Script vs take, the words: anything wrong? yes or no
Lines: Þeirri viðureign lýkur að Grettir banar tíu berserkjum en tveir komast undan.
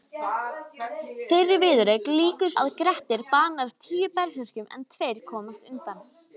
no